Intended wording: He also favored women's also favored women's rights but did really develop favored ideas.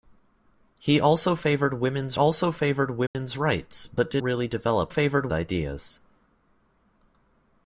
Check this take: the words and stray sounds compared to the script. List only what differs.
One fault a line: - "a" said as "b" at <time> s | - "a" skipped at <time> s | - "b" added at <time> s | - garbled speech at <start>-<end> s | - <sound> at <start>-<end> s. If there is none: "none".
- dropout at 3.1-3.1 s